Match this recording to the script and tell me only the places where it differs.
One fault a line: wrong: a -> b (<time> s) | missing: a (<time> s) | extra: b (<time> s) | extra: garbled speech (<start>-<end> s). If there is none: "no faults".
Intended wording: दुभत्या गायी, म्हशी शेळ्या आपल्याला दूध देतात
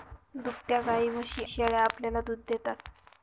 no faults